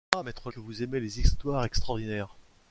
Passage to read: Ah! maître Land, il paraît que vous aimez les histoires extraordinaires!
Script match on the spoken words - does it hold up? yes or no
no